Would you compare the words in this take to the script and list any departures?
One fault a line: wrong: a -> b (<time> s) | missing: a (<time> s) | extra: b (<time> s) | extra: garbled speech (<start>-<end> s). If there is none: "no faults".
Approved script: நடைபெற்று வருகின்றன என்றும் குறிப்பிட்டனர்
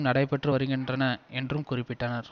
no faults